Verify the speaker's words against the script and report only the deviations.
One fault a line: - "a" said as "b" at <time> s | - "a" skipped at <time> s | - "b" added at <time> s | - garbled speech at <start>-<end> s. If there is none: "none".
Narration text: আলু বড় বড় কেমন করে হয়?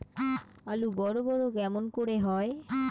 none